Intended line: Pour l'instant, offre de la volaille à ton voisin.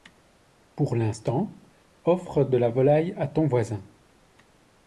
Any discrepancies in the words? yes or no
no